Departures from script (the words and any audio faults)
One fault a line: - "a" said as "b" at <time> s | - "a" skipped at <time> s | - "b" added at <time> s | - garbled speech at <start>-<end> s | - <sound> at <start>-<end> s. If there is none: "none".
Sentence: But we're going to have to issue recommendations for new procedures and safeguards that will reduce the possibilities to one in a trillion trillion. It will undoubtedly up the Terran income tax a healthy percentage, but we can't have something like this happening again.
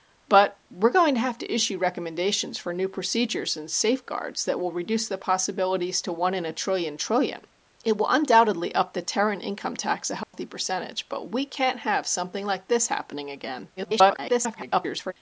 - dropout at 10.2-10.3 s
- garbled speech at 13.8-15.1 s